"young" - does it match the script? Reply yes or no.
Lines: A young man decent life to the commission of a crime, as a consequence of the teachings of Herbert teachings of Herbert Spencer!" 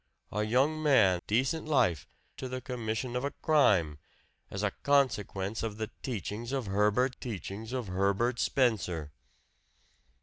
yes